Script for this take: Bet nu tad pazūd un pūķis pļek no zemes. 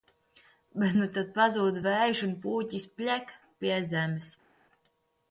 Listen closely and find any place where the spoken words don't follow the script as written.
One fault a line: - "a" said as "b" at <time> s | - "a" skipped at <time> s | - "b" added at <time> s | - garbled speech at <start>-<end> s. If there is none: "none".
- "vējš" added at 1.9 s
- "no" said as "pie" at 3.7 s